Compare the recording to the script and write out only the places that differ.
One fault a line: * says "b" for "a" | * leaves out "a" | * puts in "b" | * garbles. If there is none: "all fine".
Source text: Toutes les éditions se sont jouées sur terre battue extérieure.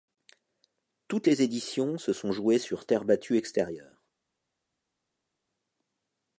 all fine